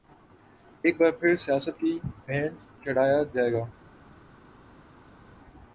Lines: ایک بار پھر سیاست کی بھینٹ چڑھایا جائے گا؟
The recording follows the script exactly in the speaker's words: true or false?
true